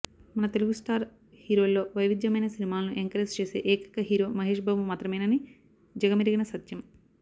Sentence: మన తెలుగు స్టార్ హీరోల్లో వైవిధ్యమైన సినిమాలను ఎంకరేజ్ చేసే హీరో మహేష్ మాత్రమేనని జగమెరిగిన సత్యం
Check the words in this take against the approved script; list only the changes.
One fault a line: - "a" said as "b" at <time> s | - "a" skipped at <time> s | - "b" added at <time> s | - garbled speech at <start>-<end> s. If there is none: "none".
- "ఏకైక" added at 3.7 s
- "బాబు" added at 4.6 s